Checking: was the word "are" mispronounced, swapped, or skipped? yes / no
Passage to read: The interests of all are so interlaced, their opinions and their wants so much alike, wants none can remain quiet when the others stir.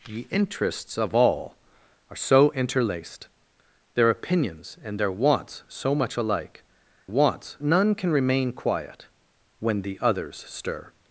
no